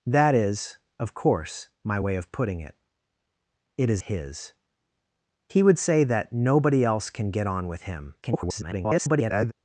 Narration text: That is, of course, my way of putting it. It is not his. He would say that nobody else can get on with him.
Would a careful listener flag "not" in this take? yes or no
yes